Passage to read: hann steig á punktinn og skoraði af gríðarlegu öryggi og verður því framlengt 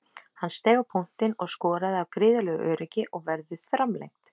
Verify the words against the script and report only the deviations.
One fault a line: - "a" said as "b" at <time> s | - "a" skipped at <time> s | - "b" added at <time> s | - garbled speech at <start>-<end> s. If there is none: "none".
- "því" skipped at 3.6 s